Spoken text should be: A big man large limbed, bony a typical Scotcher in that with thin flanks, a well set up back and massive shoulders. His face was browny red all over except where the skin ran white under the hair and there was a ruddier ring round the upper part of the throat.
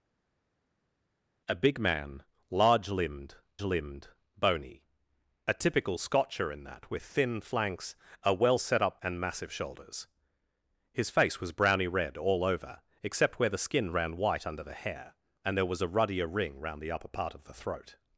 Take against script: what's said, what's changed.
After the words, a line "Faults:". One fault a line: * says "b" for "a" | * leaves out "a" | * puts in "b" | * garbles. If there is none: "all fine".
A big man large limbed limbed, bony a typical Scotcher in that with thin flanks, a well set up and massive shoulders. His face was browny red all over except where the skin ran white under the hair and there was a ruddier ring round the upper part of the throat.
Faults:
* puts in "limbed"
* leaves out "back"